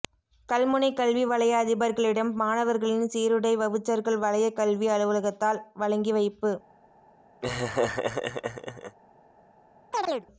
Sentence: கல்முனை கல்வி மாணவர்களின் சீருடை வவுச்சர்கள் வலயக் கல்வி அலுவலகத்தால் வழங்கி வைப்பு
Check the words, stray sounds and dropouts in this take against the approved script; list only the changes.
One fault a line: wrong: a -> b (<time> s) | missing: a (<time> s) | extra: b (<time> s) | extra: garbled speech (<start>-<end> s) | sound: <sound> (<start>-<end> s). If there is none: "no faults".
extra: வலய அதிபர்களிடம் (1.2 s)
sound: laugh (7.4-9.0 s)
sound: chirp (9.9-10.3 s)